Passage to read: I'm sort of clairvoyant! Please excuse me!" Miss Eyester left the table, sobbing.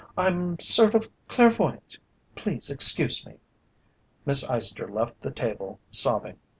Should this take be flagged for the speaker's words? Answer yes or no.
no